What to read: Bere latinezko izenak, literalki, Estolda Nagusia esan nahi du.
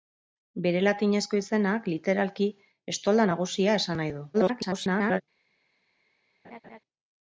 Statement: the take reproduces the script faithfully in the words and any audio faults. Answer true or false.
false